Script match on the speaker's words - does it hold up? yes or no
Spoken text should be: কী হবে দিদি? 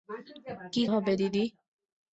yes